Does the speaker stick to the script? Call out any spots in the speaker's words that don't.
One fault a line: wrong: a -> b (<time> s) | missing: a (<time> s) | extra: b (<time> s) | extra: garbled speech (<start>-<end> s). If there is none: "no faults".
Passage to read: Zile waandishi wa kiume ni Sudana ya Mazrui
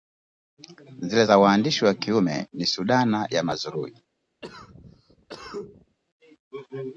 extra: za (1.2 s)